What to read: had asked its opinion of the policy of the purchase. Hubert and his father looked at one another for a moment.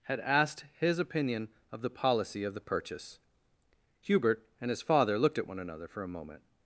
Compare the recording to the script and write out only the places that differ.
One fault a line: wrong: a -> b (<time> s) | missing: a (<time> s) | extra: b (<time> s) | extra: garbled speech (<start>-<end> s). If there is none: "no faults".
wrong: its -> his (0.8 s)